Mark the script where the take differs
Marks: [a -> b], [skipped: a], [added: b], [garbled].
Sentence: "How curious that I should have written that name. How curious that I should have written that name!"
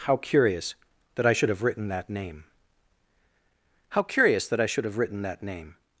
"How curious that I should have written that name. How curious that I should have written that name!"